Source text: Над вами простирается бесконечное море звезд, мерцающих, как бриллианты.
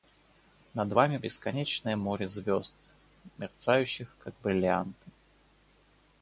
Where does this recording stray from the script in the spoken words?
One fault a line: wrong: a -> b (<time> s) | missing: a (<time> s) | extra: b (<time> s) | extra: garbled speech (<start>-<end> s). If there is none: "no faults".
missing: простирается (1.2 s)